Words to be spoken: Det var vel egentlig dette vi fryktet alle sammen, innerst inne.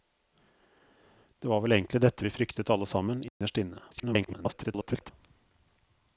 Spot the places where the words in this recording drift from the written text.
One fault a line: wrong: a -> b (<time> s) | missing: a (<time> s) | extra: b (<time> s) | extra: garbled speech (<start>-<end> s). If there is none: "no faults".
extra: garbled speech (3.9-5.1 s)